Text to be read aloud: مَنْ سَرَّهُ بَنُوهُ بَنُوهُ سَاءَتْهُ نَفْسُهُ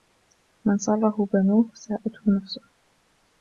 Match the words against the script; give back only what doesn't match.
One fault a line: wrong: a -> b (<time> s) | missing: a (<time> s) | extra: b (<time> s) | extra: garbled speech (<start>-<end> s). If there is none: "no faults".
missing: بَنُوهُ (1.6 s)